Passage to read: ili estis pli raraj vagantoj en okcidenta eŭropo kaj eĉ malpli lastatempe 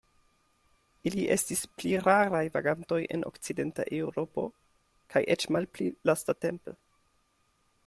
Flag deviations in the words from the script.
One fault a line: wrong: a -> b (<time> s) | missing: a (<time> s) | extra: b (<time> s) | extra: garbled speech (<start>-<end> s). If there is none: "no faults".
no faults